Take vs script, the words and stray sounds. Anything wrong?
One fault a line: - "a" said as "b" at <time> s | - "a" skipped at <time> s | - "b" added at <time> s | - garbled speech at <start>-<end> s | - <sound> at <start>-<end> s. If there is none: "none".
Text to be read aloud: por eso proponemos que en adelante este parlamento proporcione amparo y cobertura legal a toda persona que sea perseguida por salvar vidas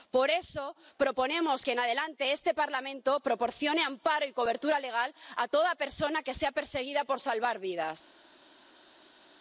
none